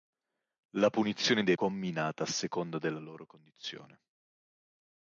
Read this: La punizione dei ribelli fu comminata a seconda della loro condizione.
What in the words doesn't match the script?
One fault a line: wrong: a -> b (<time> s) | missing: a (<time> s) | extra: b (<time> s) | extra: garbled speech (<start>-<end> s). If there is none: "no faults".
missing: ribelli fu (1.5 s)